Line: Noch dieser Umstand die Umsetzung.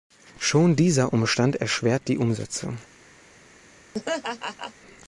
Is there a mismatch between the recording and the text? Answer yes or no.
yes